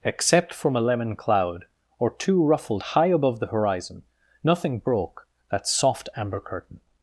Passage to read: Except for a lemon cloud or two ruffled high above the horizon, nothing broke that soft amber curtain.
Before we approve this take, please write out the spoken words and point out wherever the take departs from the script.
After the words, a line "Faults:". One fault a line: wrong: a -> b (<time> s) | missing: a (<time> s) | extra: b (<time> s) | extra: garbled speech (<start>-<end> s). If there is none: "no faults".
Except from a lemon cloud or two ruffled high above the horizon, nothing broke that soft amber curtain.
Faults:
wrong: for -> from (0.5 s)